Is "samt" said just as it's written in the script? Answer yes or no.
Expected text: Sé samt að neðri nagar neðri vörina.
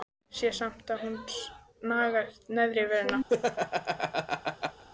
yes